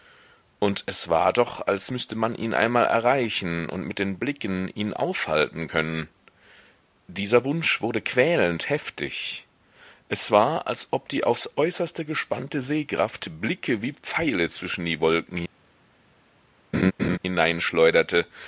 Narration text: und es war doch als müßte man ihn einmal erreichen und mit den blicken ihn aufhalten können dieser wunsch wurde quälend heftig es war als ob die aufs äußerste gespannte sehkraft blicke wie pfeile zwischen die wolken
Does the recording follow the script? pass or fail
pass